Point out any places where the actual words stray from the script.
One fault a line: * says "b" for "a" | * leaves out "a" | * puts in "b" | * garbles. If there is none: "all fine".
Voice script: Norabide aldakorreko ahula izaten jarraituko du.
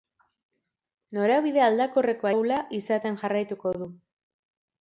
all fine